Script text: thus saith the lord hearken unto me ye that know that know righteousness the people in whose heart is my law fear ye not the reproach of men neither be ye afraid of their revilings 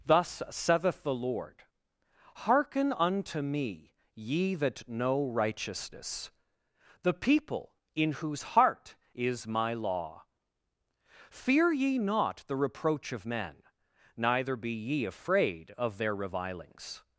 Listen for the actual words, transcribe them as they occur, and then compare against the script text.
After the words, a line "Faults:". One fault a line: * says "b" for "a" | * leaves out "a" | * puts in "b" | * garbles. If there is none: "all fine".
thus saith the lord hearken unto me ye that know righteousness the people in whose heart is my law fear ye not the reproach of men neither be ye afraid of their revilings
Faults:
* leaves out "that know"